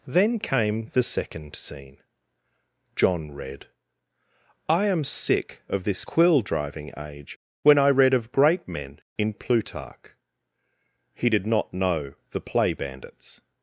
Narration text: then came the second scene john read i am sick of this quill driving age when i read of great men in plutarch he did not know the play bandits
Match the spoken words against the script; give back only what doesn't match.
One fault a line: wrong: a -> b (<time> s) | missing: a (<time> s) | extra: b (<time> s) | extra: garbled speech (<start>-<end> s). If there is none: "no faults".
no faults